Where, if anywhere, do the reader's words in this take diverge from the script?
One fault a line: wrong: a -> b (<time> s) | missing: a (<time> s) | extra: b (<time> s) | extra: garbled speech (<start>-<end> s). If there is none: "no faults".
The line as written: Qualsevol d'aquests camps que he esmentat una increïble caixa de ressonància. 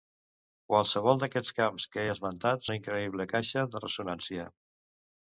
no faults